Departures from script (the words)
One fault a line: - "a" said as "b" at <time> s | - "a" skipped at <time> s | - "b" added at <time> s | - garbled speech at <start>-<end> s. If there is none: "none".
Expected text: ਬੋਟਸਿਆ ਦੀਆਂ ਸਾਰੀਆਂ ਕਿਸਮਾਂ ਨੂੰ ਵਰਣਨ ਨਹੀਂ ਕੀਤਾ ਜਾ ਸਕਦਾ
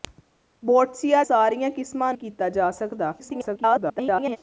- "ਦੀਆਂ" skipped at 1.2 s
- "ਨੂੰ ਵਰਣਨ ਨਹੀਂ" skipped at 2.1 s
- garbled speech at 3.2-4.4 s